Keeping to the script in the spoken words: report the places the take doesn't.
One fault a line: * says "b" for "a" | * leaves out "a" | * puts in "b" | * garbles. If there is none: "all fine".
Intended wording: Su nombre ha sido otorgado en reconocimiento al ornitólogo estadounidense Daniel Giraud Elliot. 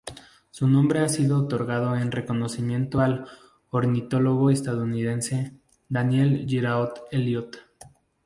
all fine